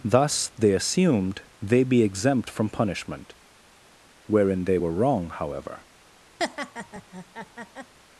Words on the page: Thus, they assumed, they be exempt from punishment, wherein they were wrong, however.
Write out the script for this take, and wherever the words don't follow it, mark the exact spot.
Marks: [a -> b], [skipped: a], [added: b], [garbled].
Thus, they assumed, they be exempt from punishment, wherein they were wrong, however.